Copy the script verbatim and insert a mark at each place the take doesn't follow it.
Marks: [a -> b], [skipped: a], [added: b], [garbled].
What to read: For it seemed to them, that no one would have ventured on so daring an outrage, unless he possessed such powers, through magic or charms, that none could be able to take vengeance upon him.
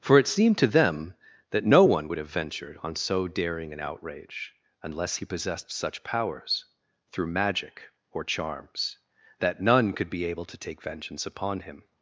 For it seemed to them, that no one would have ventured on so daring an outrage, unless he possessed such powers, through magic or charms, that none could be able to take vengeance upon him.